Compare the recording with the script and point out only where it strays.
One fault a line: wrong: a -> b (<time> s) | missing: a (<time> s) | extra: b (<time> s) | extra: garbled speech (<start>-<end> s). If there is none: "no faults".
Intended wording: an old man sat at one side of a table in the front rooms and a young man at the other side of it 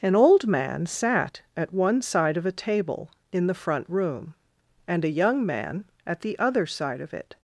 wrong: rooms -> room (3.9 s)